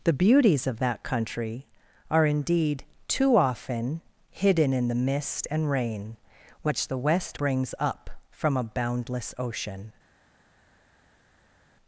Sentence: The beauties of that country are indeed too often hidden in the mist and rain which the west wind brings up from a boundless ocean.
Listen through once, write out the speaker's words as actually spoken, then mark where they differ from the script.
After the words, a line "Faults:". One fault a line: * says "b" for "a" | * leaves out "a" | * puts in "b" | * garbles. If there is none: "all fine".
The beauties of that country are indeed too often hidden in the mist and rain which the west brings up from a boundless ocean.
Faults:
* leaves out "wind"